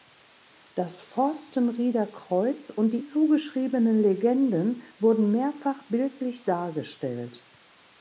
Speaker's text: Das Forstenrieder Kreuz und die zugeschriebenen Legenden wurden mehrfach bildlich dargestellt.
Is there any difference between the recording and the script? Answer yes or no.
no